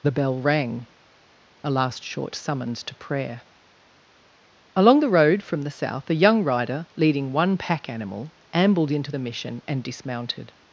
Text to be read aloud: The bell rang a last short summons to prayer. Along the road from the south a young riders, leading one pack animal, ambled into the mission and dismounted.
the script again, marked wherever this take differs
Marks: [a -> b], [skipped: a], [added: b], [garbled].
The bell rang a last short summons to prayer. Along the road from the south a young [riders, -> rider] leading one pack animal, ambled into the mission and dismounted.